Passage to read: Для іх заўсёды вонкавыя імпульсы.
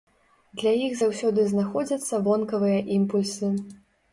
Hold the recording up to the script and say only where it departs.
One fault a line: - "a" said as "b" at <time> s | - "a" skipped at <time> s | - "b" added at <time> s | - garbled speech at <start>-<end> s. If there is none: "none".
- "знаходзяцца" added at 1.5 s